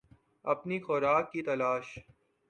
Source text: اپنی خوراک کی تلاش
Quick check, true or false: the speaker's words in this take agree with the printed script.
true